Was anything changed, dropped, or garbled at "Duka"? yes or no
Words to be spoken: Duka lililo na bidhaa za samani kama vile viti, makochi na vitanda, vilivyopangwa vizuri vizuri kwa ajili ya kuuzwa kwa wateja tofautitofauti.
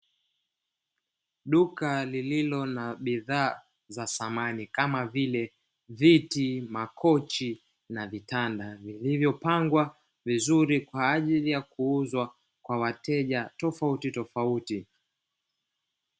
no